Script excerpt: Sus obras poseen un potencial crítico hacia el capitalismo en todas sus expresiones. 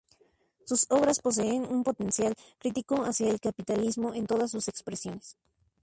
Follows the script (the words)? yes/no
yes